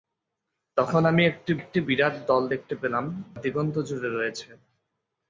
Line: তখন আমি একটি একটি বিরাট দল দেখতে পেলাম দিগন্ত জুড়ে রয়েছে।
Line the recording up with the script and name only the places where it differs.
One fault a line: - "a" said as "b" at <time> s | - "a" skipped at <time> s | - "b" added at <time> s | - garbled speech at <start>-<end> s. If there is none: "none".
none